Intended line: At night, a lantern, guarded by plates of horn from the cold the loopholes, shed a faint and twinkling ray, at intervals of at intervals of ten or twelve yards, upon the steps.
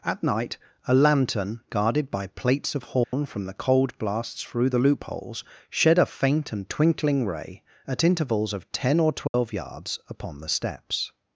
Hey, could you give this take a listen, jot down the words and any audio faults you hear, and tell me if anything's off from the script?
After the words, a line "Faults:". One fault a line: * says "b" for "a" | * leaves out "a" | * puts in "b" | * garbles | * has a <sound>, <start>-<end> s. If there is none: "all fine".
At night, a lantern, guarded by plates of horn from the cold blasts through the loopholes, shed a faint and twinkling ray, at intervals of ten or twelve yards, upon the steps.
Faults:
* has a dropout, 3.0-3.1 s
* puts in "blasts through"
* leaves out "at intervals of"
* has a dropout, 9.3-9.3 s